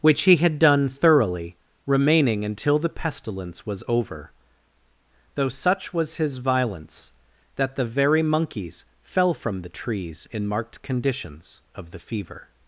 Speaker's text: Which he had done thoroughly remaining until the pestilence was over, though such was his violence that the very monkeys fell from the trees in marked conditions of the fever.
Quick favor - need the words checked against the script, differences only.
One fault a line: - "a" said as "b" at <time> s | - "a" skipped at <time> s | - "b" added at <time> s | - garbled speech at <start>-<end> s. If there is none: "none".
none